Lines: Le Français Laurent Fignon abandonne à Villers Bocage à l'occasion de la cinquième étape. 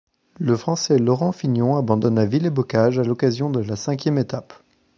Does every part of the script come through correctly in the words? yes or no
yes